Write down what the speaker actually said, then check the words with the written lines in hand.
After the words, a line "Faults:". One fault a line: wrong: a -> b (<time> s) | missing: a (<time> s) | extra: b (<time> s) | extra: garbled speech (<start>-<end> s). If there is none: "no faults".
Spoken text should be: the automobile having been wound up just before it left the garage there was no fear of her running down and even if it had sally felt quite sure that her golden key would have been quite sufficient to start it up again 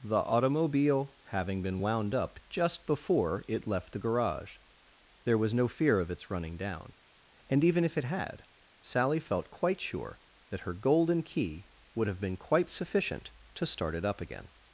the automobile having been wound up just before it left the garage there was no fear of its running down and even if it had sally felt quite sure that her golden key would have been quite sufficient to start it up again
Faults:
wrong: her -> its (6.1 s)